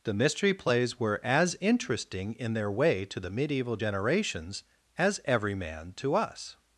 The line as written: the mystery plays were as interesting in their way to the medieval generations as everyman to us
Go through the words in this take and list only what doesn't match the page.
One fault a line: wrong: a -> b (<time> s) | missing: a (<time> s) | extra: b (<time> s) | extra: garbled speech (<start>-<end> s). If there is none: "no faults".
no faults